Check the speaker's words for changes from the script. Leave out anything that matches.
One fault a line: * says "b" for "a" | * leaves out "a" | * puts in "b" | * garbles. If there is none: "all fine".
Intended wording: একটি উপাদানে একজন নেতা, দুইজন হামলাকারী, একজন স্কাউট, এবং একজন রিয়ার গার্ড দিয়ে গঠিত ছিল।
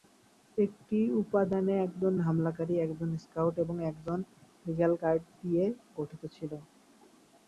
* leaves out "নেতা দুইজন"